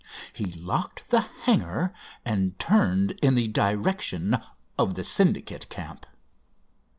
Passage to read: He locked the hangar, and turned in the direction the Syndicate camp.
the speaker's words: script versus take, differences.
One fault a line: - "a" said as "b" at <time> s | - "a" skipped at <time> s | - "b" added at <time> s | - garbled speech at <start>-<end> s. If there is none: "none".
- "of" added at 4.8 s